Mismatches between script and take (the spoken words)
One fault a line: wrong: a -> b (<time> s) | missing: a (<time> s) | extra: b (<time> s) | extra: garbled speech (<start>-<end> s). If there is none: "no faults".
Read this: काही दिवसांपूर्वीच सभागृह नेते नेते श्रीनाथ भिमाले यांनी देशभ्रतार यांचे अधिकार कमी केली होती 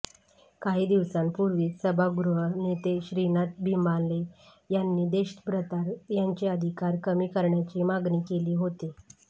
missing: नेते (3.0 s)
extra: करण्याची मागणी (7.3 s)